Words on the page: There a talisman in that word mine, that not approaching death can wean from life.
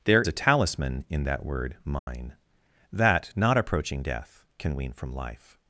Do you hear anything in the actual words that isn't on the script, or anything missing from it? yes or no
no